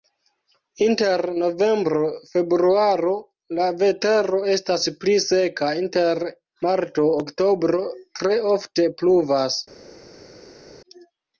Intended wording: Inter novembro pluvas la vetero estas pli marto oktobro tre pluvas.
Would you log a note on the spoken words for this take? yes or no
yes